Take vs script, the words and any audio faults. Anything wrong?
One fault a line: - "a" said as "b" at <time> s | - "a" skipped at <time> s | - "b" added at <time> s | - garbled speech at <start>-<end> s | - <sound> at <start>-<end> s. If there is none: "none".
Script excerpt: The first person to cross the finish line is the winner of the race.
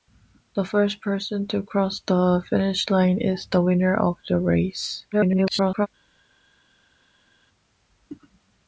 - garbled speech at 5.1-5.9 s